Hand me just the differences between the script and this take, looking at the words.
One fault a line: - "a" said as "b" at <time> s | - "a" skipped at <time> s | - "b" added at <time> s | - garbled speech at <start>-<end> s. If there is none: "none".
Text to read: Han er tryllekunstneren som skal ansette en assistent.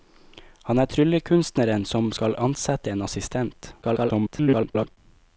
- garbled speech at 3.8-5.0 s